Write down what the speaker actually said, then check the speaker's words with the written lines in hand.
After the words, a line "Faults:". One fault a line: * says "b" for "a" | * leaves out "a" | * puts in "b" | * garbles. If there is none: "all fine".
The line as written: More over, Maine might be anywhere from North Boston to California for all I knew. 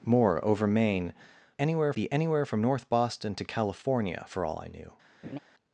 More over, Maine anywhere be anywhere from North Boston to California for all I knew.
Faults:
* says "anywhere" for "might"